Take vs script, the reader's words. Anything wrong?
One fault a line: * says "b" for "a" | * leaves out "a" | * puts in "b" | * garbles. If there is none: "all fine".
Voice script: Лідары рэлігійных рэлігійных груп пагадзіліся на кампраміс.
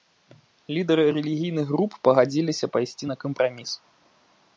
* leaves out "рэлігійных"
* puts in "пайсці"